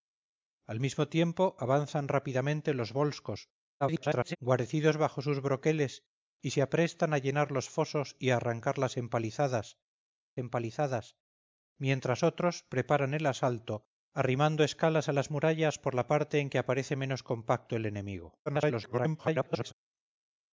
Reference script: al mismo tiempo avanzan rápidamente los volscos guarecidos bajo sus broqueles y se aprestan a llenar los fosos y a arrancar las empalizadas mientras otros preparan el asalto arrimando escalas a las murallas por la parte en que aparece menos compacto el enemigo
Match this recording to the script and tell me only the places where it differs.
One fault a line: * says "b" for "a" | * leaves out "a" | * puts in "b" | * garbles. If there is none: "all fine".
* garbles
* puts in "empalizadas"
* garbles